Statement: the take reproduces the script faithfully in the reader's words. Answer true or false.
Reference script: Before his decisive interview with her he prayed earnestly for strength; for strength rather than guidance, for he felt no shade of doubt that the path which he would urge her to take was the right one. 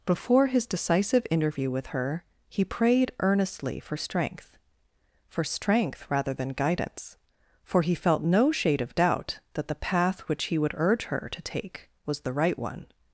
true